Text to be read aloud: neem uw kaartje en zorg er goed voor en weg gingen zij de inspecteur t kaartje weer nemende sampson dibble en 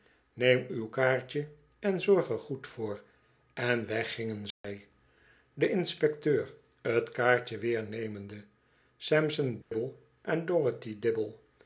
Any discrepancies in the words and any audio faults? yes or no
yes